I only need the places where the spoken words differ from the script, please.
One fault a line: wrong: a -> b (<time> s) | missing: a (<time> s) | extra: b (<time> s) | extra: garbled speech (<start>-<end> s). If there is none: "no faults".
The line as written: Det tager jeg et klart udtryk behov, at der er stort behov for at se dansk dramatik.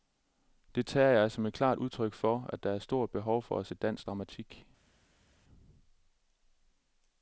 extra: som (1.3 s)
wrong: behov -> for (2.1 s)